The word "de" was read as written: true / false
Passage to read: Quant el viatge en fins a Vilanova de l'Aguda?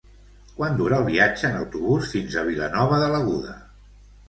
true